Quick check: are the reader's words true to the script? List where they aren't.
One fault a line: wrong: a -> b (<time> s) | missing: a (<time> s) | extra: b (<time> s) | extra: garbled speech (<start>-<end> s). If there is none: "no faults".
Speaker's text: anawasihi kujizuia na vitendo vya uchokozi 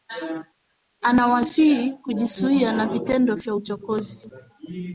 no faults